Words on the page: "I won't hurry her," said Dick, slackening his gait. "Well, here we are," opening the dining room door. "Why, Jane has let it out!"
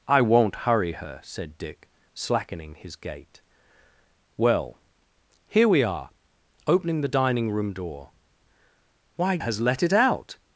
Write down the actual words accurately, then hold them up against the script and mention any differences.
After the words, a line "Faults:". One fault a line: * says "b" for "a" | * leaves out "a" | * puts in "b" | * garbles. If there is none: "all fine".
"I won't hurry her," said Dick, slackening his gait. "Well, here we are," opening the dining room door. "Why, Has let it out!"
Faults:
* leaves out "Jane"